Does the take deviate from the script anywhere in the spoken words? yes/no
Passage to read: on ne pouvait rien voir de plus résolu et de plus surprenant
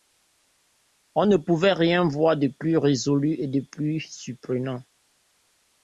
no